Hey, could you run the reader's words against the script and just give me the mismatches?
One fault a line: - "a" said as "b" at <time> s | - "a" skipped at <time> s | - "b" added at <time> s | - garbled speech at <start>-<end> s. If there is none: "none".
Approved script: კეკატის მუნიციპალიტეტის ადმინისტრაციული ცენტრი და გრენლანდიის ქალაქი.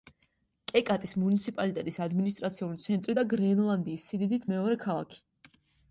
- "სიდიდით მეორე" added at 4.1 s